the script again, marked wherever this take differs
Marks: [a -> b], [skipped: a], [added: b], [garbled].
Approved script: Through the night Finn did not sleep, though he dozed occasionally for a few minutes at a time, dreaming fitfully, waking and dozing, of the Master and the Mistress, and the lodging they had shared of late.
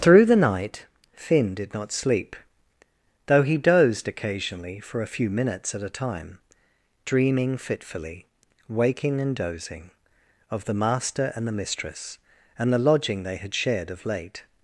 Through the night Finn did not sleep, though he dozed occasionally for a few minutes at a time, dreaming fitfully, waking and dozing, of the Master and the Mistress, and the lodging they had shared of late.